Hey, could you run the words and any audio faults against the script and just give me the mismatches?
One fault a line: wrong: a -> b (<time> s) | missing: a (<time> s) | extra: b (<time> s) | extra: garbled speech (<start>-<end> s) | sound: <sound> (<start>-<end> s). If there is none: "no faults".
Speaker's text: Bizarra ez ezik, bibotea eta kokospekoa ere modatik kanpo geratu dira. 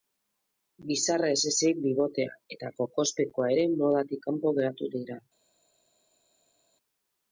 no faults